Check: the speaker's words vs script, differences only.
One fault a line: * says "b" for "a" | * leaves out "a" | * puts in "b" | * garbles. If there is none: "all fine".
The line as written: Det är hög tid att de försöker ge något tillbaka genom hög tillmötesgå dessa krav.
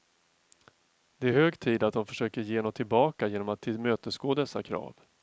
* says "att" for "hög"